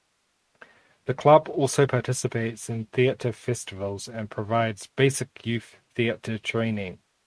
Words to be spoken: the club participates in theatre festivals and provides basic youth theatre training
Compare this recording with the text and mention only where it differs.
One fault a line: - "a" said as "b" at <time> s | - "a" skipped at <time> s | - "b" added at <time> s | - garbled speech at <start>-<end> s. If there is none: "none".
- "also" added at 1.5 s